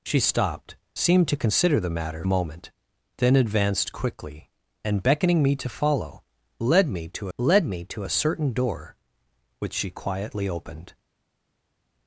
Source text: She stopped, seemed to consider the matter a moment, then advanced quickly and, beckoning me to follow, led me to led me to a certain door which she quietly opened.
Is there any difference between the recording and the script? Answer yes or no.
no